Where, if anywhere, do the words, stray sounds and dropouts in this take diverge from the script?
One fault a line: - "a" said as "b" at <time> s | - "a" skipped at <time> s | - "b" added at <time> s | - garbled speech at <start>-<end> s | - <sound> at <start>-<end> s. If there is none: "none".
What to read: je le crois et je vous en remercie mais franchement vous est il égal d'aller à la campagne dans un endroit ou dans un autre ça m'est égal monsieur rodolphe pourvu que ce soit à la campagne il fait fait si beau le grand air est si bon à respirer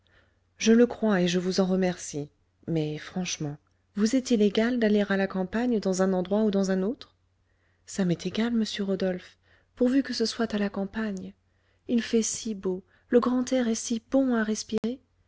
- "fait" skipped at 12.2 s
- dropout at 14.8-14.8 s